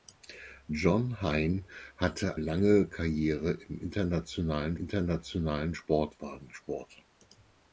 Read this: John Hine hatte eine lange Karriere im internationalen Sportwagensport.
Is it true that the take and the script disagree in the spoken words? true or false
true